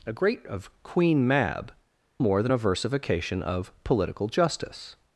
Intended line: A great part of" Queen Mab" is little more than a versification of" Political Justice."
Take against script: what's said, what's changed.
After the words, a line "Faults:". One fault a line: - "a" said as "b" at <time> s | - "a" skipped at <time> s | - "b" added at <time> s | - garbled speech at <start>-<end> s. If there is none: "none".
A great of" Queen Mab" more than a versification of" Political Justice."
Faults:
- "part" skipped at 0.4 s
- "is little" skipped at 1.7 s